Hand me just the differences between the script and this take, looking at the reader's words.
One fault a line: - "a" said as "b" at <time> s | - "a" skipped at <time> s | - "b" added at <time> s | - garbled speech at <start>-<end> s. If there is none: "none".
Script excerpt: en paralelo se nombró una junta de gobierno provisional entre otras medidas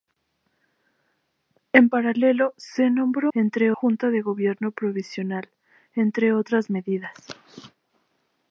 - "una" said as "entre" at 3.3 s